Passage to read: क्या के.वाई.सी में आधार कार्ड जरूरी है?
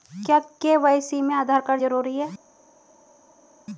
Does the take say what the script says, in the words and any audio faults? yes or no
yes